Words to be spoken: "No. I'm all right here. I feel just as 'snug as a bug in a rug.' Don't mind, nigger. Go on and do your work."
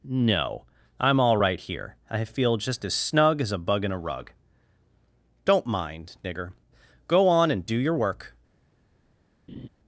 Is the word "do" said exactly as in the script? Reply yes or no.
yes